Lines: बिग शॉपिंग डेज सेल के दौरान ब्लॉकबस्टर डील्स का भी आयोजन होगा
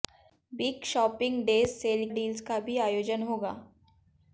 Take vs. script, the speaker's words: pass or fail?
fail